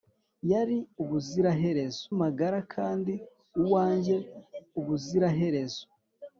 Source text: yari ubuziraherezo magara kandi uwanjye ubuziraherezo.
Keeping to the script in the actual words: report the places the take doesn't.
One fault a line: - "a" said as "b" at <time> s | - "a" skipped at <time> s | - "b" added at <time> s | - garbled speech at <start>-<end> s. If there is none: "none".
none